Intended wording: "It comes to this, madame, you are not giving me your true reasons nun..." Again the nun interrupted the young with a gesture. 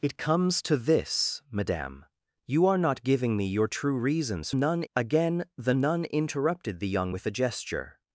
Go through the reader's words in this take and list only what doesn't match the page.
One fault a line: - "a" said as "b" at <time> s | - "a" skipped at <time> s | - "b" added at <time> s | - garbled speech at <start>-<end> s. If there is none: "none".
none